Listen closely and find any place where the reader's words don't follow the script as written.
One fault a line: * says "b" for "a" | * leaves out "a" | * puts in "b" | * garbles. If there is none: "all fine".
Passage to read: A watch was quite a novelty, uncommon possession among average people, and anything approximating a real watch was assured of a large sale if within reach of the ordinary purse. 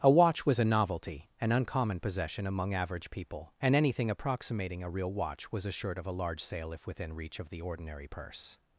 * leaves out "quite"
* puts in "an"